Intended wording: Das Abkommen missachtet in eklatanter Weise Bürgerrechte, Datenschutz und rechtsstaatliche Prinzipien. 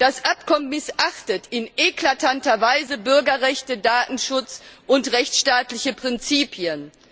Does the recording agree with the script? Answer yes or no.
yes